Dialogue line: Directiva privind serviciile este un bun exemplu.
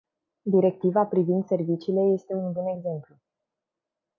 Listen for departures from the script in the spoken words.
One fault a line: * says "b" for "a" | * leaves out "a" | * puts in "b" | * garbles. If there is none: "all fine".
all fine